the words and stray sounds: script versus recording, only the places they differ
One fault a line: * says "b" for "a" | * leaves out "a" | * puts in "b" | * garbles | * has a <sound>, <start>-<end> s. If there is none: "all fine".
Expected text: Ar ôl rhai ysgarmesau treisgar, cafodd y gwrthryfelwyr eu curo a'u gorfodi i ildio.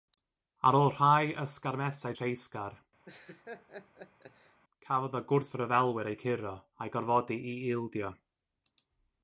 * has a laugh, 3.0-4.6 s